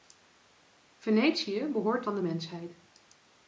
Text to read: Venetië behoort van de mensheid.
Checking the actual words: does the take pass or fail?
pass